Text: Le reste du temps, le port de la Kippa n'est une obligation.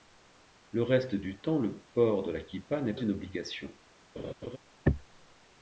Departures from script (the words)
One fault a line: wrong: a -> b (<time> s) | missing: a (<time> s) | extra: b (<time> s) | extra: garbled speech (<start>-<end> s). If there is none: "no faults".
no faults